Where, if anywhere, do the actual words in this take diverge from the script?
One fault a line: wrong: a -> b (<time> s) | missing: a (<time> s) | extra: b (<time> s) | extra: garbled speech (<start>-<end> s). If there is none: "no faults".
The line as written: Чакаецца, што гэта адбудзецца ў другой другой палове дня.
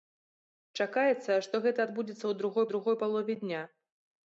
no faults